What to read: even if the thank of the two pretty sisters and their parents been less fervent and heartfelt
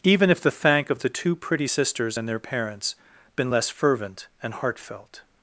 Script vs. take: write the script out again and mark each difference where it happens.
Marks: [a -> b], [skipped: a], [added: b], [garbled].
even if the thank of the two pretty sisters and their parents been less fervent and heartfelt